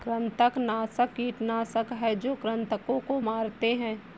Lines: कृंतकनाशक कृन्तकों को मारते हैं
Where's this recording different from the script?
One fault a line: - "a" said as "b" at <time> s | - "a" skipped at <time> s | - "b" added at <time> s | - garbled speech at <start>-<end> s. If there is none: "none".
- "कीटनाशक हैं जो" added at 1.1 s